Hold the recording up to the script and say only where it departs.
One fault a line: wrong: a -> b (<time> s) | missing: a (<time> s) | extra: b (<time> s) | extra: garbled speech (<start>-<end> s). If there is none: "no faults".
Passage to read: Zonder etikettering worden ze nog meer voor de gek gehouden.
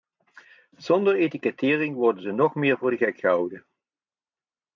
no faults